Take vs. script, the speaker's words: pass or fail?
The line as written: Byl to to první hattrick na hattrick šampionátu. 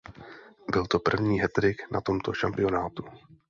fail